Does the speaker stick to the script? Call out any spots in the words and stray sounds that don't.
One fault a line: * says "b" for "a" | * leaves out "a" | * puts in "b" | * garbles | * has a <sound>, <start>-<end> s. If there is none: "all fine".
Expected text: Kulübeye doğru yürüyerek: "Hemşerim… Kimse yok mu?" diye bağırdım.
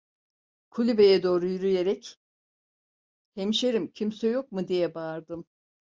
all fine